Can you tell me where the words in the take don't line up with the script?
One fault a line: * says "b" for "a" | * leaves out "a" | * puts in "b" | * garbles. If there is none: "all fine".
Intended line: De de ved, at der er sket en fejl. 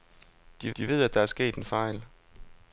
all fine